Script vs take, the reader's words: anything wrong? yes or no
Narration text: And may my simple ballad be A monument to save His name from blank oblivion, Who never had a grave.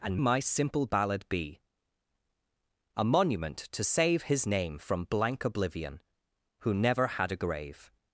yes